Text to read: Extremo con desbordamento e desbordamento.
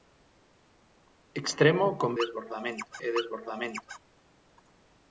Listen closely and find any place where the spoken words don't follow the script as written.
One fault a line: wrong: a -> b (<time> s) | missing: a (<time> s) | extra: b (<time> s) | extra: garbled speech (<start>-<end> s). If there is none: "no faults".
no faults